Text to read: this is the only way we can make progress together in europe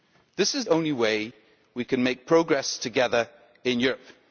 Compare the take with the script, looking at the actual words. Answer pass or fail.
fail